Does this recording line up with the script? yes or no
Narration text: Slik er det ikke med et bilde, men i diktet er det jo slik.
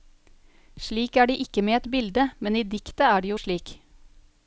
yes